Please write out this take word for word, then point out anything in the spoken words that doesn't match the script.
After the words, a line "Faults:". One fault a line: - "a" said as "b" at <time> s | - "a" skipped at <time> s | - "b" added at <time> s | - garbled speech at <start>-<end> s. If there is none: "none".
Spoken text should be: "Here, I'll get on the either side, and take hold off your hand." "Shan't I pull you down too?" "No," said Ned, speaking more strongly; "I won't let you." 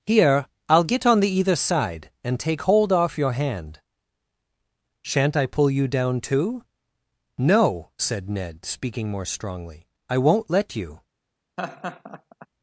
"Here, I'll get on the either side, and take hold off your hand." "Shan't I pull you down too?" "No," said Ned, speaking more strongly; "I won't let you."
Faults:
none